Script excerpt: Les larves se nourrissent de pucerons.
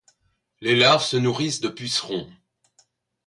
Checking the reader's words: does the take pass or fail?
pass